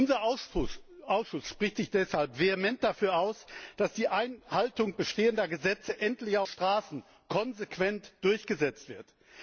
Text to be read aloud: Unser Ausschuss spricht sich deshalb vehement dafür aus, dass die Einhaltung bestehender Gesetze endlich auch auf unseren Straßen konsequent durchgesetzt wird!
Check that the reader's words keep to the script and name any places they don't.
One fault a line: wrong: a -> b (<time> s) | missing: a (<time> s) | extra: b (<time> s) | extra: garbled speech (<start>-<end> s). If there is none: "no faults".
missing: auf unseren (6.5 s)